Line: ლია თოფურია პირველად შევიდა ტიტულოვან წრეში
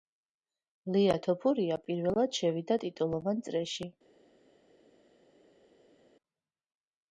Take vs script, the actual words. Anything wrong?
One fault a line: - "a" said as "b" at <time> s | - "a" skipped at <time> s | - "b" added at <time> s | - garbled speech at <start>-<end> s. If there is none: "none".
none